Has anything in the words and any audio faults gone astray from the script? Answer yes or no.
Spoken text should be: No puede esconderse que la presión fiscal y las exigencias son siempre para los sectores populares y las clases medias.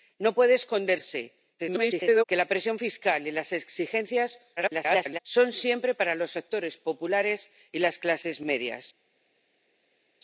yes